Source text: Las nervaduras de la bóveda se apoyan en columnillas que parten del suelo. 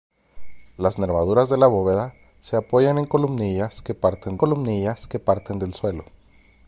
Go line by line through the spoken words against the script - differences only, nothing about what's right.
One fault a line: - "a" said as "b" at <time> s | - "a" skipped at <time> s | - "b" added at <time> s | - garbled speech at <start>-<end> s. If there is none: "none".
- "columnillas que parten" added at 4.3 s